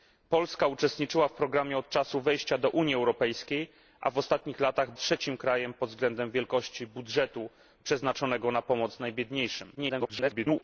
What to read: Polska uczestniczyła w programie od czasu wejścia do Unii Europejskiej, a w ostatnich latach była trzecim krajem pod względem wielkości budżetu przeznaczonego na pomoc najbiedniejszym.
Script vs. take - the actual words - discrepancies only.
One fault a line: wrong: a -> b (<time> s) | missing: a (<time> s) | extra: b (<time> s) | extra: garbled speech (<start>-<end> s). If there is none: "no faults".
missing: była (4.9 s)
extra: garbled speech (9.7-10.6 s)